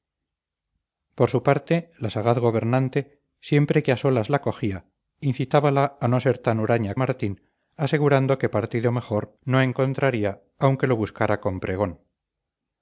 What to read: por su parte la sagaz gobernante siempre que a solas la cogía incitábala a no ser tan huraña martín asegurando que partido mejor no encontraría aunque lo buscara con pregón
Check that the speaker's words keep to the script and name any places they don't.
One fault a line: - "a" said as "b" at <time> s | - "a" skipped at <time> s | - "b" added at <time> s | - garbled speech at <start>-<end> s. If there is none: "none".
none